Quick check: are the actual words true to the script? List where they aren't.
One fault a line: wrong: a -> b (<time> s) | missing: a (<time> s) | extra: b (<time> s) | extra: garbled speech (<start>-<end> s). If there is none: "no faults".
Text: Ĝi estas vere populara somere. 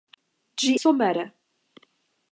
missing: estas vere populara (0.7 s)